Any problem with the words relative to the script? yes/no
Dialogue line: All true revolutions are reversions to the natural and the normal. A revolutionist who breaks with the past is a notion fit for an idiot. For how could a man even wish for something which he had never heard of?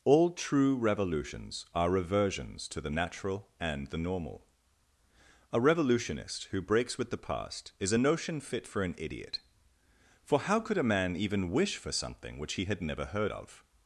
no